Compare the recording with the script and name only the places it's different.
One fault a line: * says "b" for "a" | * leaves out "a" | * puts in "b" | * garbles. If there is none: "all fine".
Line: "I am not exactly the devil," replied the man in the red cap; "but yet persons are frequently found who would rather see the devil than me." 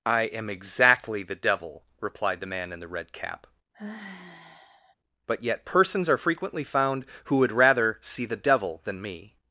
* leaves out "not"